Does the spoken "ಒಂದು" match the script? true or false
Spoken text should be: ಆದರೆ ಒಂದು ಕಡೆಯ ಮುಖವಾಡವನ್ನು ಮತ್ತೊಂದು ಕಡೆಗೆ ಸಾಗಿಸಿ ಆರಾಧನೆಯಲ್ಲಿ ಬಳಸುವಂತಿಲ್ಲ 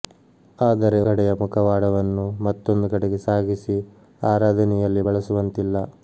false